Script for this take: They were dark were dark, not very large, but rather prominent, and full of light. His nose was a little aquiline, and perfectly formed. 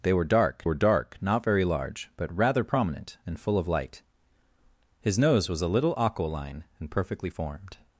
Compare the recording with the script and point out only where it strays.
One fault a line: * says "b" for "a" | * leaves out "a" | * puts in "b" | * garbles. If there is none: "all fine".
all fine